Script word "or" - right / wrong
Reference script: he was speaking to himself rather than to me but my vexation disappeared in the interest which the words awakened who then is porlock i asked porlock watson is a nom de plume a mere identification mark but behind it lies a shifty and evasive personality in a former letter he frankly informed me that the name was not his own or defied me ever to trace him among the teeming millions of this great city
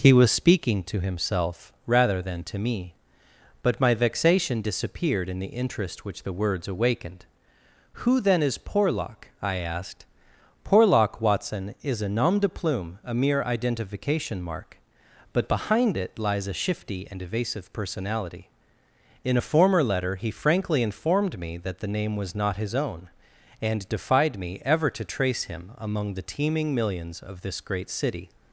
wrong